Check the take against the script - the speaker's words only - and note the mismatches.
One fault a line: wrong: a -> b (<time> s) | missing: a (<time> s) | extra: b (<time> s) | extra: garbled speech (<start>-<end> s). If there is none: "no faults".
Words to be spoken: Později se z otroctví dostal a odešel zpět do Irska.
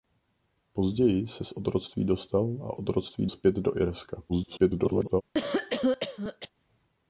wrong: odešel -> otroctví (2.7 s)
extra: garbled speech (4.3-5.2 s)